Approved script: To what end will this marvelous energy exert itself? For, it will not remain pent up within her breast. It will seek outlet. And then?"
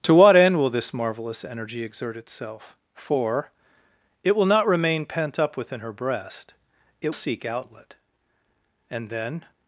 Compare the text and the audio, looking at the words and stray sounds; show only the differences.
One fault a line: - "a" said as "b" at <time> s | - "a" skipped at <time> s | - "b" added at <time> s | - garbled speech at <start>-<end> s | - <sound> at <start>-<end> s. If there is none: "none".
- "will" skipped at 7.2 s